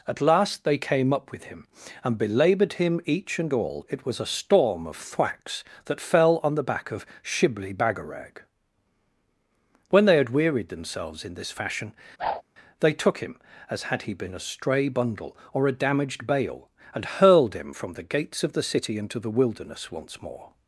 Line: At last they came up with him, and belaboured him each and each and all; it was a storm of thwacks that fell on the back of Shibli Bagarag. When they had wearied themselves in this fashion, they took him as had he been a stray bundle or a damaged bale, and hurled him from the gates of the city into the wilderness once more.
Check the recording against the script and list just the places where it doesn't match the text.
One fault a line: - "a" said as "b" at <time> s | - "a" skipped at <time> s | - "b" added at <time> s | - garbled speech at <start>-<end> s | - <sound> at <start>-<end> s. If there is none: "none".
- "each and" skipped at 3.5 s
- whoosh at 12.2-12.4 s